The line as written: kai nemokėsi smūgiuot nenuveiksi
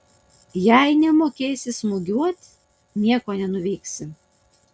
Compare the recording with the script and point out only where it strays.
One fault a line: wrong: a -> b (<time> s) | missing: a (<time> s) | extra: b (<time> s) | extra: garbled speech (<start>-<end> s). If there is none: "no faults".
wrong: kai -> jei (0.6 s)
extra: nieko (3.0 s)